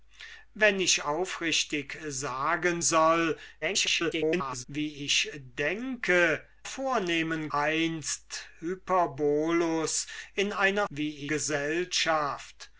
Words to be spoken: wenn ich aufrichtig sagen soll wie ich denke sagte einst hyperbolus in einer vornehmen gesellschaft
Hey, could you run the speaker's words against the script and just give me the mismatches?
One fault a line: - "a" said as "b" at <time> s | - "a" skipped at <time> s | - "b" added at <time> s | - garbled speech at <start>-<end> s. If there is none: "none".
- garbled speech at 3.6-4.7 s
- "sagte" said as "vornehmen" at 6.6 s
- "vornehmen" said as "wie" at 10.9 s